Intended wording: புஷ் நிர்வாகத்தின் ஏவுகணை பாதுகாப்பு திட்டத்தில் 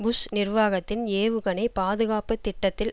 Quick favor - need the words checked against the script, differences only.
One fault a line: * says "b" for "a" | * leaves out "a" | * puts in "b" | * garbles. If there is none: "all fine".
all fine